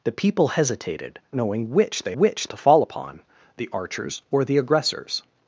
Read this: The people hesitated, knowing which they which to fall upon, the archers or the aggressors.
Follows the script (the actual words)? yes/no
yes